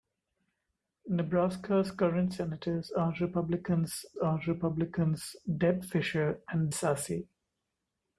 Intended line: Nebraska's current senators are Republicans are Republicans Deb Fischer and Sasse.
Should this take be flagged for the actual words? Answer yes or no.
no